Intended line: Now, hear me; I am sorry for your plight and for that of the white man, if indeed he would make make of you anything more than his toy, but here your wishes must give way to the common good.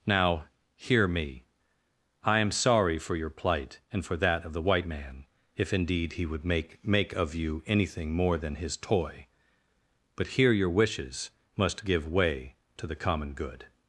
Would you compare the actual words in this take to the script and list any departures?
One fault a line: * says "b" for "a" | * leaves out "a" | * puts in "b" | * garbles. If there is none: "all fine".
all fine